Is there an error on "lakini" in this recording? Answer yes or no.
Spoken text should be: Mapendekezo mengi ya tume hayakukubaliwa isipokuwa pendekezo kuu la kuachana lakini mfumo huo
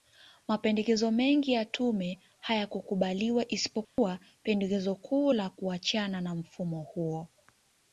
yes